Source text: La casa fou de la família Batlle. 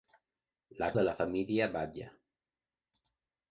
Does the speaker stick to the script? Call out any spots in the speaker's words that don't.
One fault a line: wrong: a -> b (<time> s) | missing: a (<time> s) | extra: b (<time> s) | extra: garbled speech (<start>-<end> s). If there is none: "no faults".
missing: casa fou (0.9 s)